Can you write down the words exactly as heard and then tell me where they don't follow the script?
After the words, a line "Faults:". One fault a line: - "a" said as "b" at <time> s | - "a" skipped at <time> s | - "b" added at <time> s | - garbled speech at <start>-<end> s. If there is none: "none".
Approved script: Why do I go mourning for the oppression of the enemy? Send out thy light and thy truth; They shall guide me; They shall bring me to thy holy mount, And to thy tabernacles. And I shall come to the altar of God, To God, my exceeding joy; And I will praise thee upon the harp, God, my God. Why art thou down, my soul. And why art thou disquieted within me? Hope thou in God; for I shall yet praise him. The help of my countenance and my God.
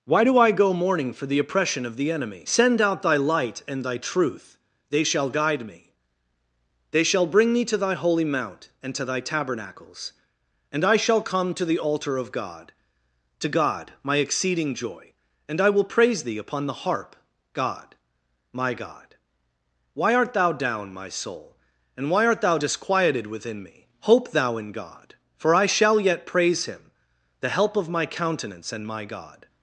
Why do I go mourning for the oppression of the enemy? Send out thy light and thy truth; They shall guide me; They shall bring me to thy holy mount, And to thy tabernacles. And I shall come to the altar of God, To God, my exceeding joy; And I will praise thee upon the harp, God, my God. Why art thou down, my soul. And why art thou disquieted within me? Hope thou in God; for I shall yet praise him. The help of my countenance and my God.
Faults:
none